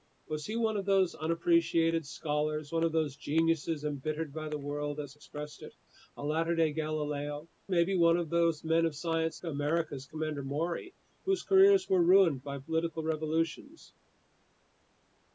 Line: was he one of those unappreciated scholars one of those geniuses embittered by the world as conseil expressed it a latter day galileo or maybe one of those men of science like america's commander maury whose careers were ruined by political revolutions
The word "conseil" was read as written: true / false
false